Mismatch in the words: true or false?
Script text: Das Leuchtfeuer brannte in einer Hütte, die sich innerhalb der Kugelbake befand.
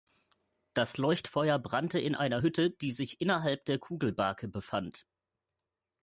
false